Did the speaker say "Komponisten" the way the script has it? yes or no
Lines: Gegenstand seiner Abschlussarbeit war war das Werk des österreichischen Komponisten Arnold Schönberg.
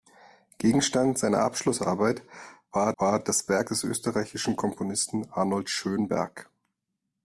yes